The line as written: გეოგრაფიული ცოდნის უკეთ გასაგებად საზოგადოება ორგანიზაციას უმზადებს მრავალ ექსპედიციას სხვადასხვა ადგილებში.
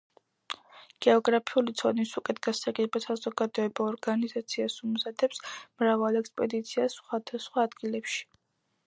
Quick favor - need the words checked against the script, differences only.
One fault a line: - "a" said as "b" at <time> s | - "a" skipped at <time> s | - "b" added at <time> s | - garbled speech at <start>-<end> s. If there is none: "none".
none